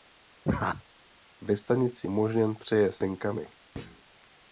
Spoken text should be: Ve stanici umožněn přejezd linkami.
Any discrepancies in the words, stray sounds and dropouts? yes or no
yes